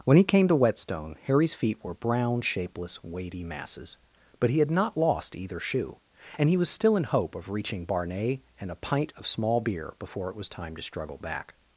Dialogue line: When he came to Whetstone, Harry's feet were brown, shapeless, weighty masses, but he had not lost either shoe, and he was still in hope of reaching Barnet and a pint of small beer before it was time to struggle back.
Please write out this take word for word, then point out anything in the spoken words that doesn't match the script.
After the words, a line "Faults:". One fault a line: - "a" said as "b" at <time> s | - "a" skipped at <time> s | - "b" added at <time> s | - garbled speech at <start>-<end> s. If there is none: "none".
When he came to Whetstone, Harry's feet were brown, shapeless, weighty masses, but he had not lost either shoe, and he was still in hope of reaching Barnet and a pint of small beer before it was time to struggle back.
Faults:
none